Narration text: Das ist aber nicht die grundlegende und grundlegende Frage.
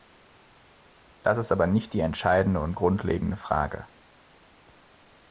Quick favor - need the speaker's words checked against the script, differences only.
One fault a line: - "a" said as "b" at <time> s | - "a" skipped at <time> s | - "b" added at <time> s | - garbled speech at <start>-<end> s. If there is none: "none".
- "grundlegende" said as "entscheidende" at 2.0 s